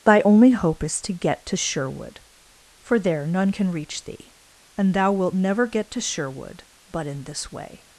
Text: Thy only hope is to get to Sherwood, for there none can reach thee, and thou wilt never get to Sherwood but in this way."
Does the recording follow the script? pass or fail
pass